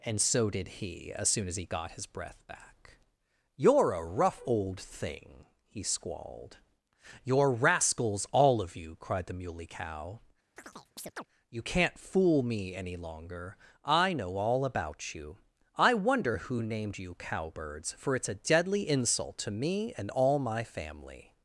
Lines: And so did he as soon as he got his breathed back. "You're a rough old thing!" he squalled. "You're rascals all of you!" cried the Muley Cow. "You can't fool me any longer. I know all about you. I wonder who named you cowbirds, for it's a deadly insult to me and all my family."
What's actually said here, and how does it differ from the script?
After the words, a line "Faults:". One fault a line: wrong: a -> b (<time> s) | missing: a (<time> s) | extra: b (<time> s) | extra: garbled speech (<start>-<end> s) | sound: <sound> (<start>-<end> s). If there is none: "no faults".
And so did he as soon as he got his breath back. "You're a rough old thing!" he squalled. "You're rascals all of you!" cried the Muley Cow. "You can't fool me any longer. I know all about you. I wonder who named you cowbirds, for it's a deadly insult to me and all my family."
Faults:
wrong: breathed -> breath (2.1 s)
sound: chirp (10.6-11.3 s)